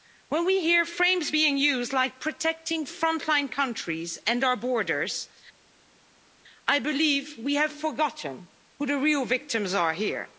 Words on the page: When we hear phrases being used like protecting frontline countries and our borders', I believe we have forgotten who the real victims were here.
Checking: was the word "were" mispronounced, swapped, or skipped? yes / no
yes